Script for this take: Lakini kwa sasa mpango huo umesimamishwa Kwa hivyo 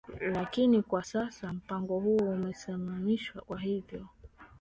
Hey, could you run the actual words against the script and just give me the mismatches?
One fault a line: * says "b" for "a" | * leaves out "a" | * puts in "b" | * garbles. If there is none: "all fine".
all fine